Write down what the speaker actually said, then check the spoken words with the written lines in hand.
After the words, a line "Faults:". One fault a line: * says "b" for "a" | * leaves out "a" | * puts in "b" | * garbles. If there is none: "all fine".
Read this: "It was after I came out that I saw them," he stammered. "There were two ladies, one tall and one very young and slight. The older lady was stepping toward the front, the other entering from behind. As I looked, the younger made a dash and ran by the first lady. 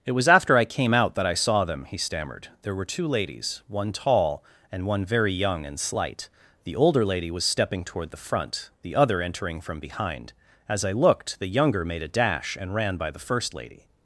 "It was after I came out that I saw them," he stammered. "There were two ladies, one tall and one very young and slight. The older lady was stepping toward the front, the other entering from behind. As I looked, the younger made a dash and ran by the first lady.
Faults:
all fine